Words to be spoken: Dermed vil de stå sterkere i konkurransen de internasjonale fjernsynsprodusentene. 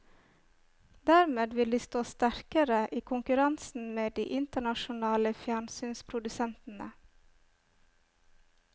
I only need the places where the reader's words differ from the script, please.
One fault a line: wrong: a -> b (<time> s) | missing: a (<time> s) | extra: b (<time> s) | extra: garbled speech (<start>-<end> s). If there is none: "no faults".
extra: med (3.9 s)